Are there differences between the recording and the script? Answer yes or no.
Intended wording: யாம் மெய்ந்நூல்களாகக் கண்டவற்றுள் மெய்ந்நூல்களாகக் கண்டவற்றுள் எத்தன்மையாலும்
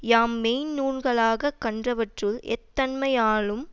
yes